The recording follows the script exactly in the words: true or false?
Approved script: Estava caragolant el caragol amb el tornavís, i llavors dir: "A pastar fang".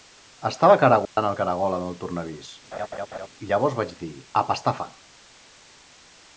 false